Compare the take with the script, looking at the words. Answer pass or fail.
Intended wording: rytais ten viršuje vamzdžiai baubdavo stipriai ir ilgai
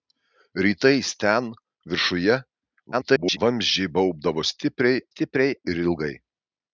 fail